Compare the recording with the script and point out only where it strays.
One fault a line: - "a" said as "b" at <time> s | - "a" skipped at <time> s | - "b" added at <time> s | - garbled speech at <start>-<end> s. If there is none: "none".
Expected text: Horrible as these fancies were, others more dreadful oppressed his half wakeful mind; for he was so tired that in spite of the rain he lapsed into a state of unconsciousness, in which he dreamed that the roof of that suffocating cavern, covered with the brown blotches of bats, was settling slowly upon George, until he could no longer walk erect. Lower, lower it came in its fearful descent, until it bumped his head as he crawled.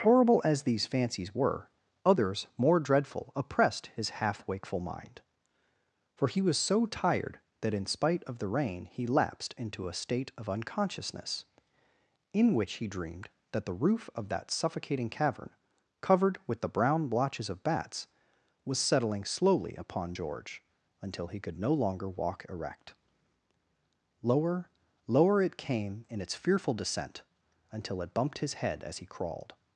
none